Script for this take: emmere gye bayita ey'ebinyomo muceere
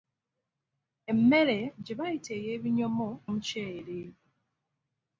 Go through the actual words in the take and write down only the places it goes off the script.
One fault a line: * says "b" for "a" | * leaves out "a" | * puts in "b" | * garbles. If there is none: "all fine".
all fine